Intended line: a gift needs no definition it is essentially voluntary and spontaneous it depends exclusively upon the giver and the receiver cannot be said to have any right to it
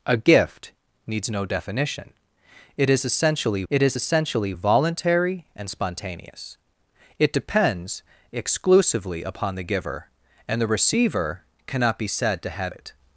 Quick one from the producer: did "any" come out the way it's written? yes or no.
no